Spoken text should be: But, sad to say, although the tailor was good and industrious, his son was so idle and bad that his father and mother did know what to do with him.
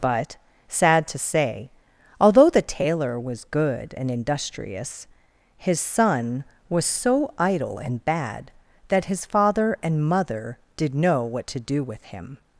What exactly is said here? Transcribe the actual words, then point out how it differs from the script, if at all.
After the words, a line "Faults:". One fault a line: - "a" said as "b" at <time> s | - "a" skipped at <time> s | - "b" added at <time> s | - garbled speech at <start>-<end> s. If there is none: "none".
But, sad to say, although the tailor was good and industrious, his son was so idle and bad that his father and mother did know what to do with him.
Faults:
none